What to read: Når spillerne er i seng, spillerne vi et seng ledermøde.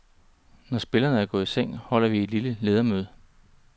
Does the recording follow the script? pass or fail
fail